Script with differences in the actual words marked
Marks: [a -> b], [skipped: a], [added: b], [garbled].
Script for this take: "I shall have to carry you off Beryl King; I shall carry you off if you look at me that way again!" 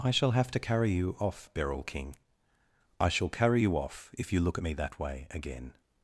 "I shall have to carry you off Beryl King; I shall carry you off if you look at me that way again!"